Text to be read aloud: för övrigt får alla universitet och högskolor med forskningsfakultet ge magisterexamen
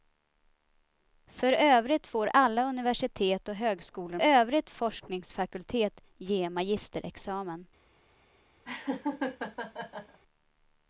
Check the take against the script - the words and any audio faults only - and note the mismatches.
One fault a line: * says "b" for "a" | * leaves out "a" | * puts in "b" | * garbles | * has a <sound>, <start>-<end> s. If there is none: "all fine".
* says "övrigt" for "med"
* has a laugh, 8.6-10.2 s